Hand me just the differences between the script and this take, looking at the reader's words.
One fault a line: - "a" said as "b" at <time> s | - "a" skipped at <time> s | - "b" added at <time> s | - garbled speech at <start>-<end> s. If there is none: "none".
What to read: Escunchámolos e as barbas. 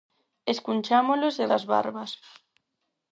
none